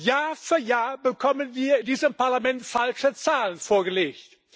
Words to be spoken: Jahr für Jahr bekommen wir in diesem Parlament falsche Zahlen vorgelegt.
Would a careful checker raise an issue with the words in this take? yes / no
no